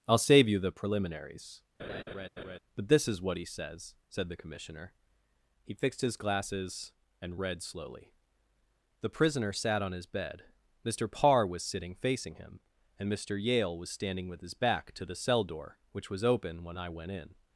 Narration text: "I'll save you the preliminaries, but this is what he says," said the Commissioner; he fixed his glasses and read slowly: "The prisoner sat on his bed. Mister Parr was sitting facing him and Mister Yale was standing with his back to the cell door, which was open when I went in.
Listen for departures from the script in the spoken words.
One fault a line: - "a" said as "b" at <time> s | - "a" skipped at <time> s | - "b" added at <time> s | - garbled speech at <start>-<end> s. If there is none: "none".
none